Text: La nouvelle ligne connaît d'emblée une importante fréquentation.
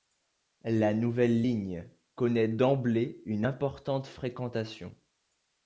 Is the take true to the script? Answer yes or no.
yes